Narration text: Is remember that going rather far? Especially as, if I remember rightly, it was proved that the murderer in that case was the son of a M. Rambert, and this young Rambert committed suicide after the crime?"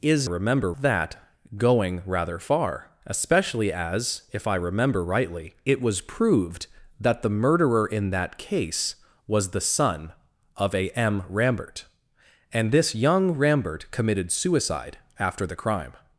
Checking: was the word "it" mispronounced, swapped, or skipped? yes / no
no